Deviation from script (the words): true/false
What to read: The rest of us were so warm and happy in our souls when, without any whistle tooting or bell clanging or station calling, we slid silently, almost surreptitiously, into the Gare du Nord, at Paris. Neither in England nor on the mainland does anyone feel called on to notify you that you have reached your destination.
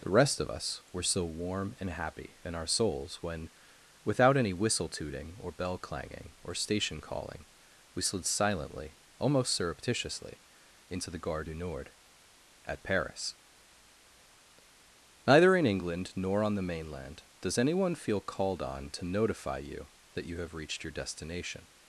false